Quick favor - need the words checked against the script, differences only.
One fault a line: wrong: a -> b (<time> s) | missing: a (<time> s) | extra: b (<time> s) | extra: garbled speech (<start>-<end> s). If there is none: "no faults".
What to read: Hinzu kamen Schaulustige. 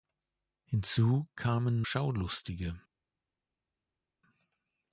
no faults